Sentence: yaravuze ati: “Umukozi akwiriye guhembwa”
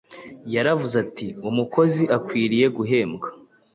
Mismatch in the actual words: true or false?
false